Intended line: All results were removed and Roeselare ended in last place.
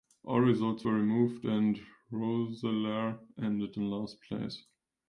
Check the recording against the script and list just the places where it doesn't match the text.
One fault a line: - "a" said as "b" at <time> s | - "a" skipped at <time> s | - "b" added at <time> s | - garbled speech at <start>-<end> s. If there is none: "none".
none